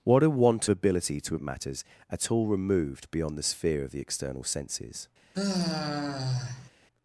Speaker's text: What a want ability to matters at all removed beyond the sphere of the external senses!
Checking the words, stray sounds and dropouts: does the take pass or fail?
fail